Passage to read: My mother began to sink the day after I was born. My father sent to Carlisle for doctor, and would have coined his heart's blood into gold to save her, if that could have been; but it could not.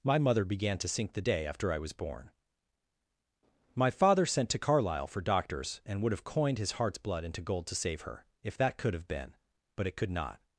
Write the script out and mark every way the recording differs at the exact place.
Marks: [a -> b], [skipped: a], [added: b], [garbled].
My mother began to sink the day after I was born. My father sent to Carlisle for [doctor, -> doctors] and would have coined his heart's blood into gold to save her, if that could have been; but it could not.